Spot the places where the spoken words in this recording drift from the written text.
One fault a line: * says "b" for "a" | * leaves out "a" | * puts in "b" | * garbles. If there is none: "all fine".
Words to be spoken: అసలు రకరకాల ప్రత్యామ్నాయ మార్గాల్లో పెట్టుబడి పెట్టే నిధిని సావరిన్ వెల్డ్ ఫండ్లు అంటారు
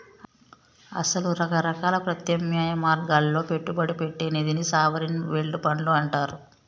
all fine